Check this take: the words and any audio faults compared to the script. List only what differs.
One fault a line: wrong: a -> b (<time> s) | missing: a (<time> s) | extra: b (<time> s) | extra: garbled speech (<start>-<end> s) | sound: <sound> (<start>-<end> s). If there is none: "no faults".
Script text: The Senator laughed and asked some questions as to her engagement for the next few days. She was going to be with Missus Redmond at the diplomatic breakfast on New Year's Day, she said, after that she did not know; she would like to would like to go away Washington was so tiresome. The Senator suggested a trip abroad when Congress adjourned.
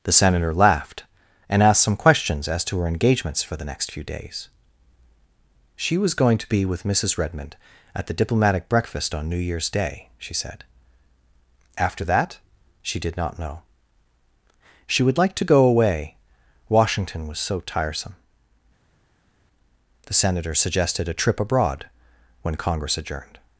wrong: engagement -> engagements (2.9 s)
missing: would like to (15.5 s)